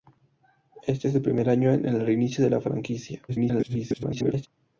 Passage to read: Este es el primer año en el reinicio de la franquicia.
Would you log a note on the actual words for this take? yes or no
yes